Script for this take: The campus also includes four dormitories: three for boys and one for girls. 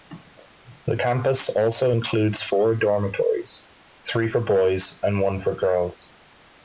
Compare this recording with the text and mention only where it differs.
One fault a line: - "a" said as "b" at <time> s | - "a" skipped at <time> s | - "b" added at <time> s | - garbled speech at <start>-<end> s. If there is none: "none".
none